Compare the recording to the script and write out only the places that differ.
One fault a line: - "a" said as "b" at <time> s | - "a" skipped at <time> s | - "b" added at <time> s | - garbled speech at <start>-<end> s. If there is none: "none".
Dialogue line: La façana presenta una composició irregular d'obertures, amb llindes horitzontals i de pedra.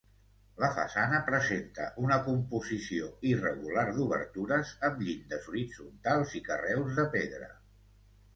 - "carreus" added at 6.5 s